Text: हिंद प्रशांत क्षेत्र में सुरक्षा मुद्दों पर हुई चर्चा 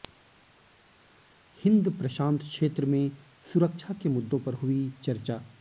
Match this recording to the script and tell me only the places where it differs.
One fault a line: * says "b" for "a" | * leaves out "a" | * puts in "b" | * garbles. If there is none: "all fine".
* puts in "के"